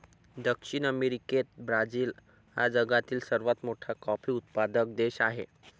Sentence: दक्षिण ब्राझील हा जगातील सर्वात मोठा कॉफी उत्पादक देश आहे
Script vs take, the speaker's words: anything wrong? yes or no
yes